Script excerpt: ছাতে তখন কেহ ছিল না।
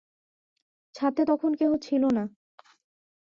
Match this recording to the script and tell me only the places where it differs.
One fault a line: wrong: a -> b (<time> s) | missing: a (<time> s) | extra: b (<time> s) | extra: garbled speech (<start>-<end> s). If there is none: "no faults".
no faults